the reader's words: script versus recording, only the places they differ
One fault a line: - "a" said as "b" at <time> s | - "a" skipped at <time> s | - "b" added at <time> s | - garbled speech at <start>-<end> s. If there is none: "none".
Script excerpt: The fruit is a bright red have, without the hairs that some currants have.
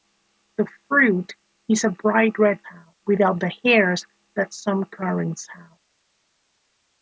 none